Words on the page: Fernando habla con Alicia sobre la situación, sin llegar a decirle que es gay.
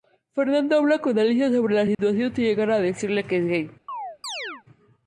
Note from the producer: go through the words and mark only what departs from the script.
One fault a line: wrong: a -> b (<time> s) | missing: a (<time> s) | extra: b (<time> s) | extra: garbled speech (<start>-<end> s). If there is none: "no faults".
no faults